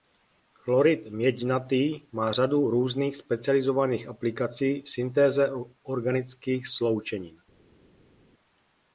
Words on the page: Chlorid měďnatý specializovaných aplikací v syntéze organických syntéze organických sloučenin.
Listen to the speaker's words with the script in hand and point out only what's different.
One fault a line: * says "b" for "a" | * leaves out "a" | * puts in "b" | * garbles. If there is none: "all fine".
* puts in "má řadu různých"
* leaves out "syntéze organických"